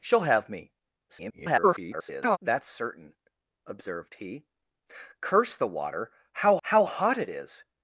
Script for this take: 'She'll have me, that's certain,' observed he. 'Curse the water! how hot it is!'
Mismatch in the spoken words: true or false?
true